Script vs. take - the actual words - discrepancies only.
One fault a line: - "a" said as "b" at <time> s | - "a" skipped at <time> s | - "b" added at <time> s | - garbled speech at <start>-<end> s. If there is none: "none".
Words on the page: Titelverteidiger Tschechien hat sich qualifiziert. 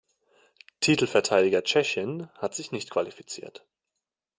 - "nicht" added at 2.7 s